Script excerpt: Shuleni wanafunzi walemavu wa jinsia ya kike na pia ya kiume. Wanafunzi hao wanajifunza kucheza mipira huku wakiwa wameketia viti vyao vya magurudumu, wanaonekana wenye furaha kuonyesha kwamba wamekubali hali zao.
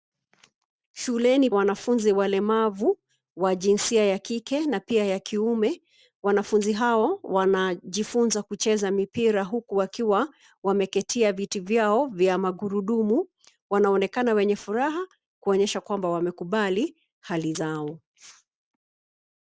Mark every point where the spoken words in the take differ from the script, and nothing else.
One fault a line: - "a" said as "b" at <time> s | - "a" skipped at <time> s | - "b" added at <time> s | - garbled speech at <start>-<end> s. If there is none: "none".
none